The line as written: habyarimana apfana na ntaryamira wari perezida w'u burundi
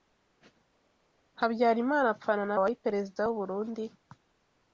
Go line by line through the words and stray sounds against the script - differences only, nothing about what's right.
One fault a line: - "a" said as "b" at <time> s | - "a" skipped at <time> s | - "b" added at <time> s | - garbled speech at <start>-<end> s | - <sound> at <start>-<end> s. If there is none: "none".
- "ntaryamira" skipped at 2.6 s